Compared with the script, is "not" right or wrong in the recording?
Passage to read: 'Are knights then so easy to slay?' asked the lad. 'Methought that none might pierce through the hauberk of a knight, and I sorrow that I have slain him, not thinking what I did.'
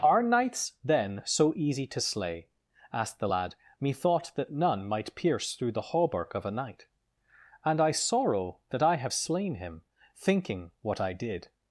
wrong